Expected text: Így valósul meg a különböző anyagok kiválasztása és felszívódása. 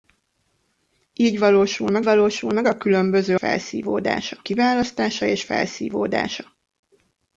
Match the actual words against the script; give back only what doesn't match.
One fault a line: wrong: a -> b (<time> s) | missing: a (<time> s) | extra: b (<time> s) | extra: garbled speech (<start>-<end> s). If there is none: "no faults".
extra: valósul meg (2.0 s)
wrong: anyagok -> felszívódása (3.3 s)